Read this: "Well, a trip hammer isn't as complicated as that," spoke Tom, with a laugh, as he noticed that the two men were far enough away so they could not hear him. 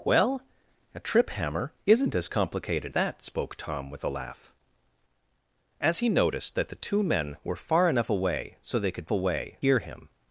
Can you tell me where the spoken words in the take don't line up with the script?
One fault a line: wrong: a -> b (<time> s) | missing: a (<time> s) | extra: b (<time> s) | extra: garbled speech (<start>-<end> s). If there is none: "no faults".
missing: as (3.0 s)
wrong: not -> away (9.1 s)